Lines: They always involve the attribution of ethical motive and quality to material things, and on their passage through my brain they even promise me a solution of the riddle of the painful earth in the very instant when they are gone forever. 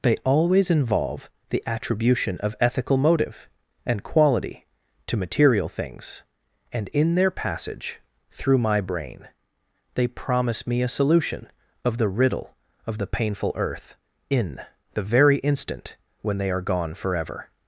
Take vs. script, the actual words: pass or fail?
fail